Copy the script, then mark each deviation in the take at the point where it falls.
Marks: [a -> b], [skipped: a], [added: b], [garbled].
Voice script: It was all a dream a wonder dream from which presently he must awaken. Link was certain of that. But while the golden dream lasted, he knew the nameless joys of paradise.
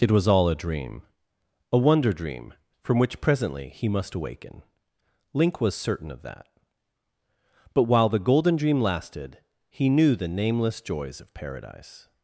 It was all a dream a wonder dream from which presently he must awaken. Link was certain of that. But while the golden dream lasted, he knew the nameless joys of paradise.